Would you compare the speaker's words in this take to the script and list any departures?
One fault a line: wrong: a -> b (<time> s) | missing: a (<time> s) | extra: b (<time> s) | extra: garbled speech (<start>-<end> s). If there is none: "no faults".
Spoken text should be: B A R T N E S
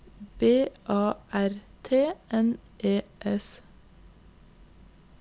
no faults